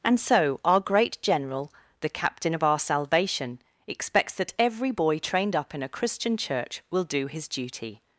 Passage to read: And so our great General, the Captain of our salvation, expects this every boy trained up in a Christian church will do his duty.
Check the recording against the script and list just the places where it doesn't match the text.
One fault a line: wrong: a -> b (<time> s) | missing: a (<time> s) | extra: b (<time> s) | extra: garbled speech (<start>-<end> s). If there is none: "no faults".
wrong: this -> that (4.3 s)